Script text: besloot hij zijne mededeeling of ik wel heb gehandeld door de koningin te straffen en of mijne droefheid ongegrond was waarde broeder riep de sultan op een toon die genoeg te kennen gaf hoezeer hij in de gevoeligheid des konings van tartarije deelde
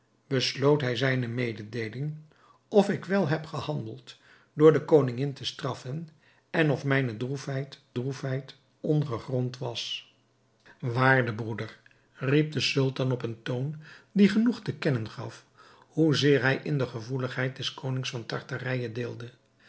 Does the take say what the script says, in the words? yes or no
no